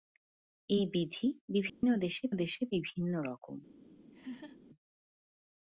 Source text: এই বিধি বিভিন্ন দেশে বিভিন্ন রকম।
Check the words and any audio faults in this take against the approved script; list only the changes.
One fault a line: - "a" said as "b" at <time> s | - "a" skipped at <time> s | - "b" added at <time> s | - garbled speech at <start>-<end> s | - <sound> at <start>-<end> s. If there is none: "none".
- dropout at 1.7-1.8 s
- "দেশে" added at 2.3 s
- laugh at 4.1-4.6 s